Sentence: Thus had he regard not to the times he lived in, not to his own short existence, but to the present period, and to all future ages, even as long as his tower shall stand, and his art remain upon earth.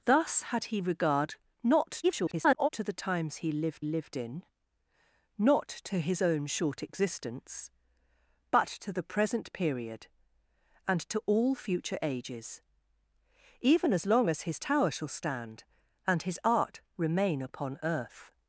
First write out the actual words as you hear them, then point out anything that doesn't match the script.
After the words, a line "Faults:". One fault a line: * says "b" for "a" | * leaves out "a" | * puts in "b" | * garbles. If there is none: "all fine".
Thus had he regard not [garbled] to the times he lived lived in, not to his own short existence, but to the present period, and to all future ages, even as long as his tower shall stand, and his art remain upon earth.
Faults:
* garbles
* puts in "lived"